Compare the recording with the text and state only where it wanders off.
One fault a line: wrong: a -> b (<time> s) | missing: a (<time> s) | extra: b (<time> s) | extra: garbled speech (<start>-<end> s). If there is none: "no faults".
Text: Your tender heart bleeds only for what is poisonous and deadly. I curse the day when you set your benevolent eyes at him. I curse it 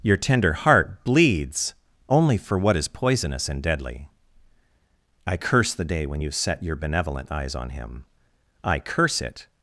wrong: at -> on (7.5 s)